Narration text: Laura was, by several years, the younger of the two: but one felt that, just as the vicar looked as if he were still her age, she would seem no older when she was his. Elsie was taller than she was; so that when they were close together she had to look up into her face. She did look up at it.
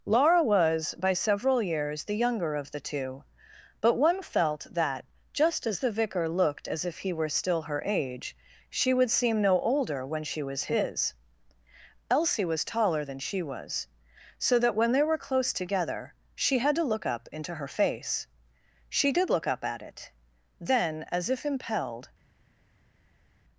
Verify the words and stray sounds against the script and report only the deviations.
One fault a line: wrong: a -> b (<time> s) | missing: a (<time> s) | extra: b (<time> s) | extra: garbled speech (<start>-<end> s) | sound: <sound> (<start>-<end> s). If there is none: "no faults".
extra: Then as if impelled (20.6 s)